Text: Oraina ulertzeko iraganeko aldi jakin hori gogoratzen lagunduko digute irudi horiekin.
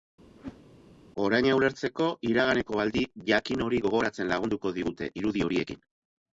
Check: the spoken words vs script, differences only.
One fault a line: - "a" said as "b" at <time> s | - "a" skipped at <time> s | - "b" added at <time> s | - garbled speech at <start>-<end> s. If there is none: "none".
none